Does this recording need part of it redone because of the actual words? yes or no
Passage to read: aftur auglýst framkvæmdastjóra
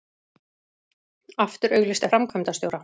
no